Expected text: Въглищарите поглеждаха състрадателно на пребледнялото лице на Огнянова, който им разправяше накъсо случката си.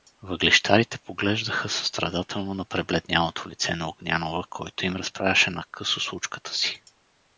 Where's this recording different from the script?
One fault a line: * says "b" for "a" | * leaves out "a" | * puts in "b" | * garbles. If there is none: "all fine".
all fine